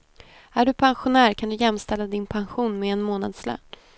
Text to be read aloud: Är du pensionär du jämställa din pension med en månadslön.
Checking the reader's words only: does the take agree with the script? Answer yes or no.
no